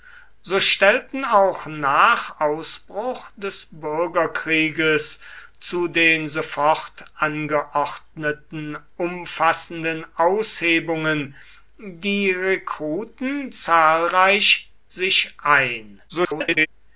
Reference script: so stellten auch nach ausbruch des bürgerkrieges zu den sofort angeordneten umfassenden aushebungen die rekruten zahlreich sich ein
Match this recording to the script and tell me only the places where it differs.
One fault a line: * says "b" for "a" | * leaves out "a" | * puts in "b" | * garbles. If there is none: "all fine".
* garbles